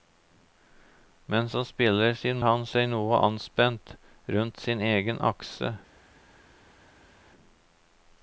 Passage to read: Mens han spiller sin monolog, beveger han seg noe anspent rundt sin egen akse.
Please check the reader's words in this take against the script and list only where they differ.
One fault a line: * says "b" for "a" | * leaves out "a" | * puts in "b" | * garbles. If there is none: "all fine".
* leaves out "monolog beveger"